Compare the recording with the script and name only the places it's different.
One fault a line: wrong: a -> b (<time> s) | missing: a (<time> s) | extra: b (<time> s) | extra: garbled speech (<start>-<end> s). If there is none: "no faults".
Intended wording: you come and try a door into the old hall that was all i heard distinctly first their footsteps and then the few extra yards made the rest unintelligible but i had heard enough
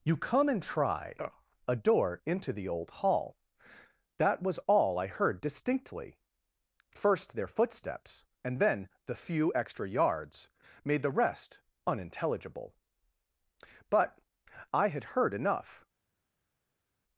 no faults